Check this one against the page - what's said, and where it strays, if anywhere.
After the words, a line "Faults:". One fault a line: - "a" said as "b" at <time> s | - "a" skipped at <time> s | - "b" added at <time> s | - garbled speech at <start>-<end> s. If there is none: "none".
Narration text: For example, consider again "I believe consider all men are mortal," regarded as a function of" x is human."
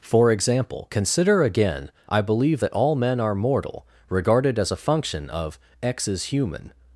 For example, consider again "I believe that all men are mortal," regarded as a function of" x is human."
Faults:
- "consider" said as "that" at 2.6 s